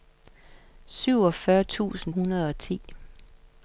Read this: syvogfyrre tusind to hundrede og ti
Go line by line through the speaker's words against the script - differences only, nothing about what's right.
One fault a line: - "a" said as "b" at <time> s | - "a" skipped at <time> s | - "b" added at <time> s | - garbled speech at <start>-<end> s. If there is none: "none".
- "to" skipped at 2.1 s